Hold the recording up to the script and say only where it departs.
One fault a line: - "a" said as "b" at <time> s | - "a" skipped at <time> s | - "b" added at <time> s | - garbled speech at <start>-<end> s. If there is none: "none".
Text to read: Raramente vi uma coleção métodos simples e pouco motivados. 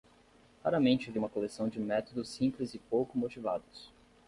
- "de" added at 1.7 s